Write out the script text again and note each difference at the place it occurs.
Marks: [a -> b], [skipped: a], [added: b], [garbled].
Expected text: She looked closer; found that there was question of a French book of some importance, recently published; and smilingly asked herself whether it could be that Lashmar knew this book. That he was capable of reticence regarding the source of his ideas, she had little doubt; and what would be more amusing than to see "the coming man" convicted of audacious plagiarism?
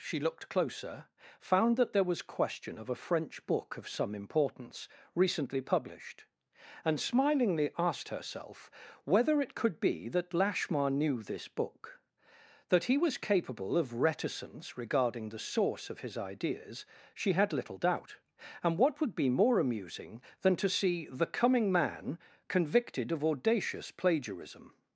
She looked closer; found that there was question of a French book of some importance, recently published; and smilingly asked herself whether it could be that Lashmar knew this book. That he was capable of reticence regarding the source of his ideas, she had little doubt; and what would be more amusing than to see "the coming man" convicted of audacious plagiarism?